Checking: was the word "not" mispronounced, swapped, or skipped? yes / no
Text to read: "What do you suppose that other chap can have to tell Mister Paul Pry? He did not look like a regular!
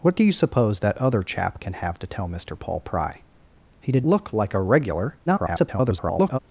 yes